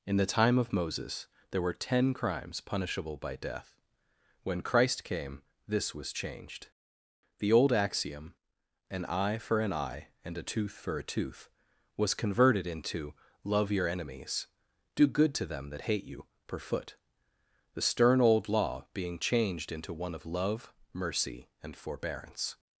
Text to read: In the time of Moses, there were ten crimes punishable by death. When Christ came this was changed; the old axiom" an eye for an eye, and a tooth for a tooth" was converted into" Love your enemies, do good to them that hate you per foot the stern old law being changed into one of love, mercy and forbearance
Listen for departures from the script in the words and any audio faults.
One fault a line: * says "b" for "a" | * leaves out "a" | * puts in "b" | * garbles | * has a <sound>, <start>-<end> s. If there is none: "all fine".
all fine